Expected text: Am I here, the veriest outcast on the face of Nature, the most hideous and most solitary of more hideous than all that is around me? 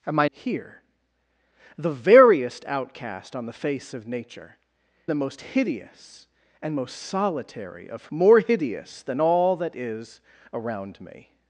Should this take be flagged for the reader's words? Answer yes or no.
no